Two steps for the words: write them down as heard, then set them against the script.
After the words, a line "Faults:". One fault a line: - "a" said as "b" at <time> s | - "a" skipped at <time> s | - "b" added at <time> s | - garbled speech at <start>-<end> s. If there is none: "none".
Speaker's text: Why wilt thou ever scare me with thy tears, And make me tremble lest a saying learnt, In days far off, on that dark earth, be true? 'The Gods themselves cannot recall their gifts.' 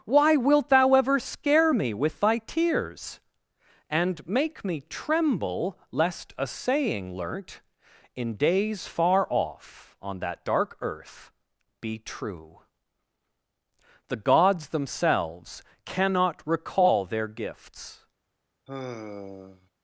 Why wilt thou ever scare me with thy tears, And make me tremble lest a saying learnt, In days far off, on that dark earth, be true? 'The Gods themselves cannot recall their gifts.'
Faults:
none